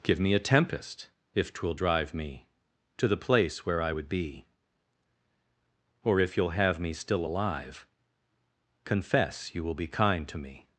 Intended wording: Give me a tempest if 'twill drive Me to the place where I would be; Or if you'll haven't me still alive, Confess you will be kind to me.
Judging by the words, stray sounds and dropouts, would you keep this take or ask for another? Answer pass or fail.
fail